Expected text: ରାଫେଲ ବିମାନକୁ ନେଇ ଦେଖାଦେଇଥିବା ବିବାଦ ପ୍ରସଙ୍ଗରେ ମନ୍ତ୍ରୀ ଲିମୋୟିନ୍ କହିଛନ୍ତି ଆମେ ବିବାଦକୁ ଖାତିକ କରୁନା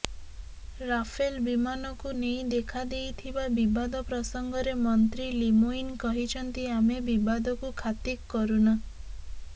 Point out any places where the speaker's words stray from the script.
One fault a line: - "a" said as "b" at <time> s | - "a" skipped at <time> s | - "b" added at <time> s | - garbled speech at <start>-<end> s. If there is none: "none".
none